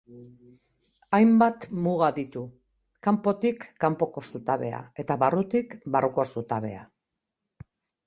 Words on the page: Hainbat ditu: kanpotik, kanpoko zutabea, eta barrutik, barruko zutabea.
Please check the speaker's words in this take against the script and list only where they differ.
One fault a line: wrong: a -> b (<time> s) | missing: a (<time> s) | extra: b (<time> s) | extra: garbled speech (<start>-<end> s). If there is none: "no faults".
extra: muga (1.9 s)